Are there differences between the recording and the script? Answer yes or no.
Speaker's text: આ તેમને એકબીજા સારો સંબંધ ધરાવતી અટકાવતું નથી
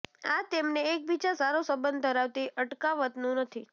no